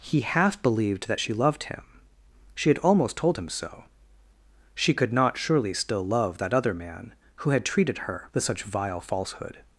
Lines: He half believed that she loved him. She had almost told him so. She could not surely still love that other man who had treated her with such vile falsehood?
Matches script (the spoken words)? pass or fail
pass